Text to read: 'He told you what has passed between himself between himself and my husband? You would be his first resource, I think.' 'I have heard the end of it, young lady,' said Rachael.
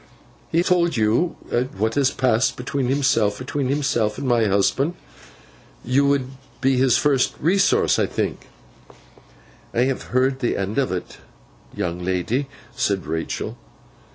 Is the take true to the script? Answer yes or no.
yes